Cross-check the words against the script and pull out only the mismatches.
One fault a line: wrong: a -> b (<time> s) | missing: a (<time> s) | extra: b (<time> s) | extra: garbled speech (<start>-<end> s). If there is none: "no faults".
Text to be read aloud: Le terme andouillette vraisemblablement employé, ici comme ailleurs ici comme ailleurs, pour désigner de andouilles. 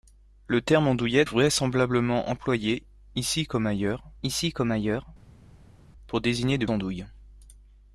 no faults